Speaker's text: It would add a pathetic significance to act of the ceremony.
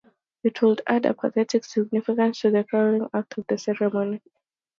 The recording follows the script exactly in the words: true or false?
false